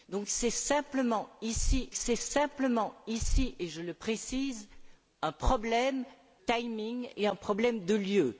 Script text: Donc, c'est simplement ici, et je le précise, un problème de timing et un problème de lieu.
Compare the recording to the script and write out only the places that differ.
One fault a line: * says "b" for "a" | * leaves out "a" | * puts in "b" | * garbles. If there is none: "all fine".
* puts in "c'est simplement ici"
* leaves out "de"